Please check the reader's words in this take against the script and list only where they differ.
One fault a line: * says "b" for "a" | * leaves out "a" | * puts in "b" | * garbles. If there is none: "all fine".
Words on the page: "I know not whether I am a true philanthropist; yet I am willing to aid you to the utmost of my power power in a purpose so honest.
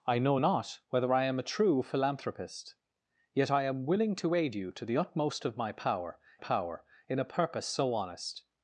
all fine